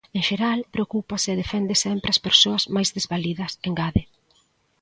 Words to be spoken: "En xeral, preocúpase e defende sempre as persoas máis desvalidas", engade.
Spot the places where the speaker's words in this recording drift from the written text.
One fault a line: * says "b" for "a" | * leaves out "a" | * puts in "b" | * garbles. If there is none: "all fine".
all fine